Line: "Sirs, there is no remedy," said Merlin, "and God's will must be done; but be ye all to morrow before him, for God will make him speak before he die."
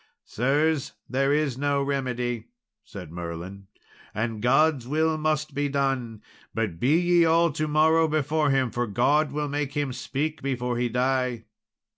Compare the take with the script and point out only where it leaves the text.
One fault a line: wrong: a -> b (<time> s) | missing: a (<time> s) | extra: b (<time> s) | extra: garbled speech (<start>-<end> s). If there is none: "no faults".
no faults